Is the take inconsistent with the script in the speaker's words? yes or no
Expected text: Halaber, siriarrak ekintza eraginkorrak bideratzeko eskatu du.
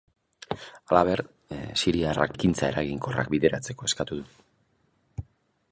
no